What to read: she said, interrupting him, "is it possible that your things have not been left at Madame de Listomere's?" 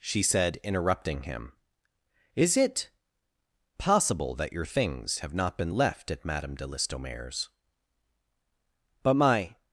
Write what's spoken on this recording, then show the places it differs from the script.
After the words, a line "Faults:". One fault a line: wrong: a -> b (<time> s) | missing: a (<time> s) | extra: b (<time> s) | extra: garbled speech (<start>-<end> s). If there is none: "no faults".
she said, interrupting him, "is it possible that your things have not been left at Madame de Listomere's?" "But my
Faults:
extra: But my (9.0 s)